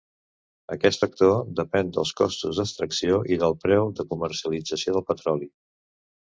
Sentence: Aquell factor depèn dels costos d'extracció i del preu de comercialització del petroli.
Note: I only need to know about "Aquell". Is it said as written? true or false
false